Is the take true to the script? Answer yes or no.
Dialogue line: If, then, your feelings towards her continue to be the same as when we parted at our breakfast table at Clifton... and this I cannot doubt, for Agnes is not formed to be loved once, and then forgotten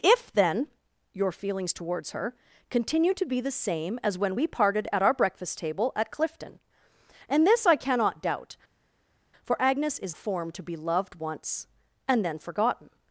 no